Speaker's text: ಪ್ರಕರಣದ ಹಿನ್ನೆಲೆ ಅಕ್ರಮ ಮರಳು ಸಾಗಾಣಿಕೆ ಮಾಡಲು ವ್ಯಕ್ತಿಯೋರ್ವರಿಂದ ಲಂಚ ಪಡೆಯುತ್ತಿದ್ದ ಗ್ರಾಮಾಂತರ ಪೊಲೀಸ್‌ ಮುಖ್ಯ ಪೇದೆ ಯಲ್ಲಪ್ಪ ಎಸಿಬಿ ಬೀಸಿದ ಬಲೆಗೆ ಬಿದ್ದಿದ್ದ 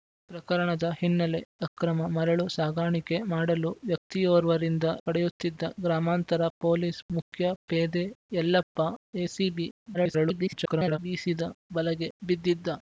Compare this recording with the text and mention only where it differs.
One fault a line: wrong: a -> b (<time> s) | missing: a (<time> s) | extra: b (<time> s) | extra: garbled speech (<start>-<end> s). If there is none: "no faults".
missing: ಲಂಚ (4.8 s)
extra: garbled speech (9.9-11.0 s)